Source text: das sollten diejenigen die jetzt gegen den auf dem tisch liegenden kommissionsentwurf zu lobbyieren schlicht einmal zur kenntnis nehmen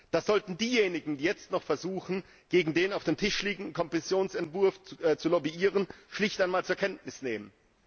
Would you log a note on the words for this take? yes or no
yes